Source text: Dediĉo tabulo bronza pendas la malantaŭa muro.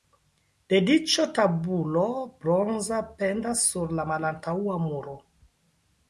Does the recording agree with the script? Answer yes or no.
no